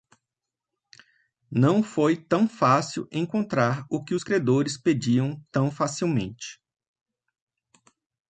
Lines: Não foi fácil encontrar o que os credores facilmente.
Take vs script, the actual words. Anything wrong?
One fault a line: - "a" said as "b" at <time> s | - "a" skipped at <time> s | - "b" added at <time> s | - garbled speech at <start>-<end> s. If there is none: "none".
- "tão" added at 2.2 s
- "pediam tão" added at 4.8 s